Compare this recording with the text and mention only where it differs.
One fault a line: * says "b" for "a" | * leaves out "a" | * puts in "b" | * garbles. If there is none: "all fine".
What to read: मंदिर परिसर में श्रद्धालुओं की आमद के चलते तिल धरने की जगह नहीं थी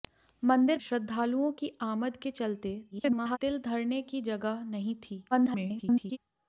* leaves out "परिसर में"
* garbles
* garbles